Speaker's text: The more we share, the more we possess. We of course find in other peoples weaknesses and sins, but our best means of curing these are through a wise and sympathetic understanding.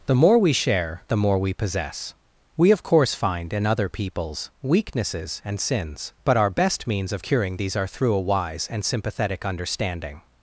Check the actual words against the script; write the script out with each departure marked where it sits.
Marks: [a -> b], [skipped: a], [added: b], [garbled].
The more we share, the more we possess. We of course find in other peoples weaknesses and sins, but our best means of curing these are through a wise and sympathetic understanding.